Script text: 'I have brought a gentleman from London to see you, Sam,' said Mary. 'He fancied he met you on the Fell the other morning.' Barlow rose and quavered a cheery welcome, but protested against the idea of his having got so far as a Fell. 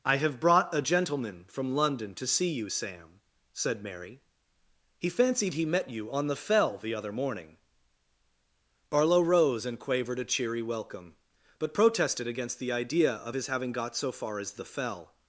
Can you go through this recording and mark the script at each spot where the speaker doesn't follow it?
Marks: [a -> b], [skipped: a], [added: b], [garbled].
'I have brought a gentleman from London to see you, Sam,' said Mary. 'He fancied he met you on the Fell the other morning.' Barlow rose and quavered a cheery welcome, but protested against the idea of his having got so far as [a -> the] Fell.